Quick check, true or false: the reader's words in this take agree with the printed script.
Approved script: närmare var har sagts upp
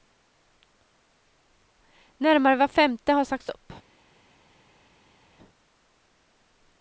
false